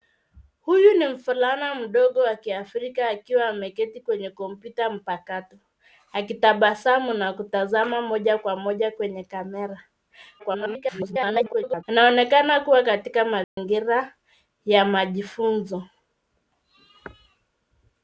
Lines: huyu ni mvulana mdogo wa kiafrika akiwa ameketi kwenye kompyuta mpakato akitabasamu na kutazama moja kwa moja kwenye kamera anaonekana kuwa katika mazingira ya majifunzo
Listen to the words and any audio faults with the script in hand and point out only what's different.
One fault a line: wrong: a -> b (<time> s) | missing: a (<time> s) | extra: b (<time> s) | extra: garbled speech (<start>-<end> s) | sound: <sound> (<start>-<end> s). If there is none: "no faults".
extra: garbled speech (10.4-11.8 s)
sound: dropout (13.4-13.6 s)